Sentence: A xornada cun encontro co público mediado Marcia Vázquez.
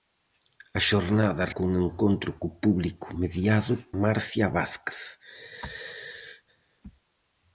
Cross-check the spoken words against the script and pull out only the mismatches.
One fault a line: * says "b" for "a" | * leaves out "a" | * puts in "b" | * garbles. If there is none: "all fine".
all fine